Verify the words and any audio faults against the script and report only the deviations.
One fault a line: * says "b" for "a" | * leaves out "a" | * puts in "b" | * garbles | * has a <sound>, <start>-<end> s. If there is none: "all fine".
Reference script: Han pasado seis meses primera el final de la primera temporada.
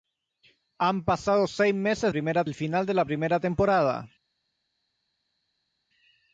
all fine